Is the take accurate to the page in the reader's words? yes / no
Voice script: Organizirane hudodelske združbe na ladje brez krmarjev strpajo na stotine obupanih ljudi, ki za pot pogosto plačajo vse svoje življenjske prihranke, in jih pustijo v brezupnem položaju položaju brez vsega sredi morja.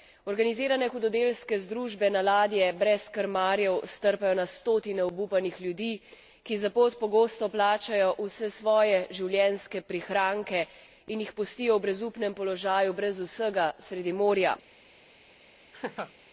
no